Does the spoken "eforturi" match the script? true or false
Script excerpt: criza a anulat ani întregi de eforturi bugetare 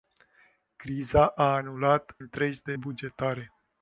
false